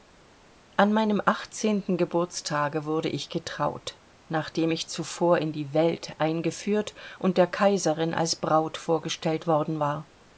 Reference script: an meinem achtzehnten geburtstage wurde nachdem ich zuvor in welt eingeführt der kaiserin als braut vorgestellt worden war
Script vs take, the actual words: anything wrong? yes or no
yes